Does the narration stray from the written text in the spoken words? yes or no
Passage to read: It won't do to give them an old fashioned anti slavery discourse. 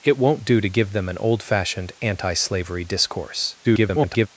yes